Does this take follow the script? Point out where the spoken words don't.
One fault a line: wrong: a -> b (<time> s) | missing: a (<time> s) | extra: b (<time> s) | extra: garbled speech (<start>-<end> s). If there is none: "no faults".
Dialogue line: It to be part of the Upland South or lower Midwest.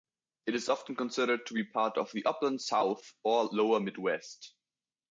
extra: is often considered (0.6 s)